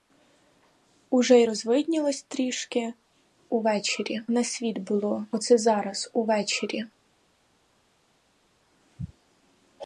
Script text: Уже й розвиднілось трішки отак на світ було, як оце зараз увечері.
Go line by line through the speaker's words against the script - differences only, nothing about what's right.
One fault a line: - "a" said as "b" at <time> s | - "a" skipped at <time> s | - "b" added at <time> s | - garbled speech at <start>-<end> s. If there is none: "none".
- "отак" said as "увечері" at 3.5 s
- "як" skipped at 5.3 s